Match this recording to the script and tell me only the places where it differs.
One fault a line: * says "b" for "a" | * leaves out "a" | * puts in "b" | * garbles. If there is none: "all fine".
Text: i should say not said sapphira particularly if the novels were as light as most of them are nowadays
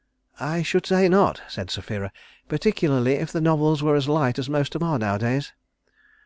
* leaves out "them"